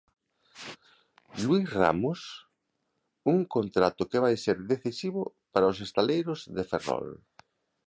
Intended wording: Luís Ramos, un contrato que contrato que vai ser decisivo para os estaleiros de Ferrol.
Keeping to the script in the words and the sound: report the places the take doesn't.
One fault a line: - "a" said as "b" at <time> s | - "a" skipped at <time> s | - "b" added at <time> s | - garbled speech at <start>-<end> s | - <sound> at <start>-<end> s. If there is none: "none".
- "contrato que" skipped at 4.2 s